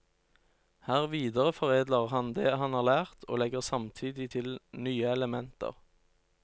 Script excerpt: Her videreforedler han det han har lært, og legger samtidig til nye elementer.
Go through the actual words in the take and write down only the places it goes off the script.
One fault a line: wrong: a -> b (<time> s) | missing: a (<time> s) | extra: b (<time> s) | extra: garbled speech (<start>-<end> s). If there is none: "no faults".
no faults